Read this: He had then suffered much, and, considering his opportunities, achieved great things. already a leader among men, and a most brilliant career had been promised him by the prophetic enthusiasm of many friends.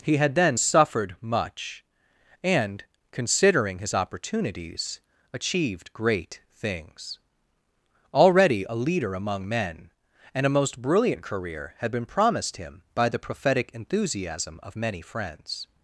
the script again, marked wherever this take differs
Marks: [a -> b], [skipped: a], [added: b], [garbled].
He had then suffered much, and, considering his opportunities, achieved great things. already a leader among men, and a most brilliant career had been promised him by the prophetic enthusiasm of many friends.